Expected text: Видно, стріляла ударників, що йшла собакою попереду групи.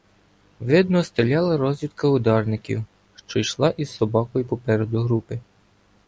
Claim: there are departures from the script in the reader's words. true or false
true